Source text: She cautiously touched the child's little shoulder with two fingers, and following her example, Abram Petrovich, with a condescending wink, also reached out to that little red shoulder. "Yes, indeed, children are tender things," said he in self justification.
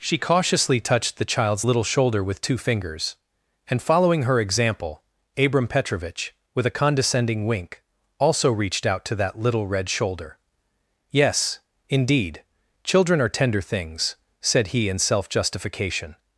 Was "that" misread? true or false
false